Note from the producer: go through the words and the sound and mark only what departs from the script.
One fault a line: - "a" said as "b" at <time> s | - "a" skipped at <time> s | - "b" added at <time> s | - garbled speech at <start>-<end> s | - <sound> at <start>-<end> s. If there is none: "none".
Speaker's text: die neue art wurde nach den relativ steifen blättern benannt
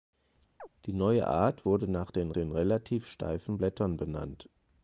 - chirp at 0.6-0.7 s
- "den" added at 2.3 s